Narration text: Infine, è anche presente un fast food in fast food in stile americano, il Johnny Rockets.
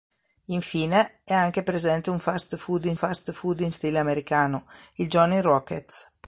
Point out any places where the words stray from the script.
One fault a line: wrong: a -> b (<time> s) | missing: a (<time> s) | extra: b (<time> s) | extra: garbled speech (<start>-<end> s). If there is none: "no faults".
no faults